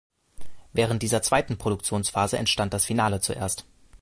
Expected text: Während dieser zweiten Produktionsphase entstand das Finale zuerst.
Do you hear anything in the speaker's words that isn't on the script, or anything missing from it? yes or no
no